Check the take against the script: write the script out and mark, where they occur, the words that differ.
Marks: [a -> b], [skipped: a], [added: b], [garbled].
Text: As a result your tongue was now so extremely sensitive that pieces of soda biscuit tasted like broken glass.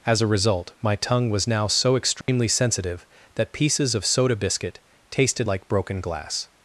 As a result [your -> my] tongue was now so extremely sensitive that pieces of soda biscuit tasted like broken glass.